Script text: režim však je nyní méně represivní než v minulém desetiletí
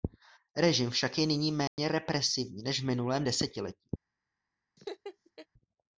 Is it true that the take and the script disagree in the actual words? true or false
false